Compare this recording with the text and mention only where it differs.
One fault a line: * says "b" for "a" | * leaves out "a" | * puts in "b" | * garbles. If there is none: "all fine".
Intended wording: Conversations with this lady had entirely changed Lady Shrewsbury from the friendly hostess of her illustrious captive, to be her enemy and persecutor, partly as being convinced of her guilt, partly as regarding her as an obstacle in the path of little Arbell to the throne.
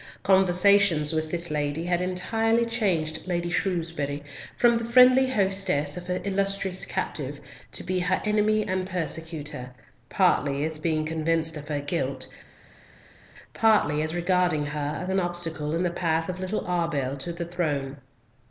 all fine